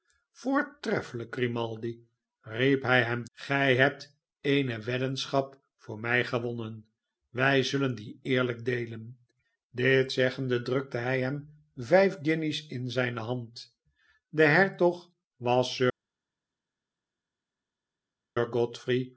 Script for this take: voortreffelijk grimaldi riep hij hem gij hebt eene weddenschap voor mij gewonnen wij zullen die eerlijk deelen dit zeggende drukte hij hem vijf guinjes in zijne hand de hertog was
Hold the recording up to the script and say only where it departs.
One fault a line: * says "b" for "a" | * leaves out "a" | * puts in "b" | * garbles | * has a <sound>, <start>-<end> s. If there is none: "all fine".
all fine